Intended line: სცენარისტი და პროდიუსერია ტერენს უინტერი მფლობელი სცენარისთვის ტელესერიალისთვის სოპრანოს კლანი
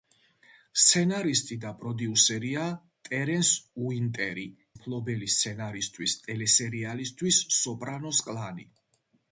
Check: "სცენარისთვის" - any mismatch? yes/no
no